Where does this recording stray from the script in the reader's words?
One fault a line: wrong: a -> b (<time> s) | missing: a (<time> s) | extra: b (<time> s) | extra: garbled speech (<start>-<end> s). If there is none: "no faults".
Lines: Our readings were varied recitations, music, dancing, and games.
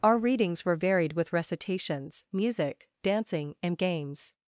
extra: with (1.1 s)